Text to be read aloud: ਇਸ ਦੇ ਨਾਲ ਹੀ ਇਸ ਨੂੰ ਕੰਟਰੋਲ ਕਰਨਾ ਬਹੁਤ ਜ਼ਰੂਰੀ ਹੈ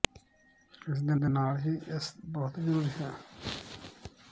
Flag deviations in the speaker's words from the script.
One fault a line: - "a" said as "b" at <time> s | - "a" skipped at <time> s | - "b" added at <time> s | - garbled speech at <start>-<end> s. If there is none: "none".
- "ਦੇ" added at 1.1 s
- "ਨੂੰ ਕੰਟਰੋਲ ਕਰਨਾ" skipped at 2.1 s